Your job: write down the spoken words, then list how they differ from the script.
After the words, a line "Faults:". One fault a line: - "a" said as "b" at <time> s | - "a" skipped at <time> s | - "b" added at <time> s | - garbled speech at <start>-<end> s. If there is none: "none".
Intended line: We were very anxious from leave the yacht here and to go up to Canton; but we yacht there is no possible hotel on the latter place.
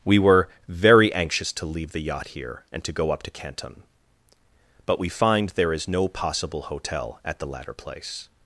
We were very anxious to leave the yacht here and to go up to Canton; but we find there is no possible hotel at the latter place.
Faults:
- "from" said as "to" at 1.5 s
- "yacht" said as "find" at 5.1 s
- "on" said as "at" at 7.2 s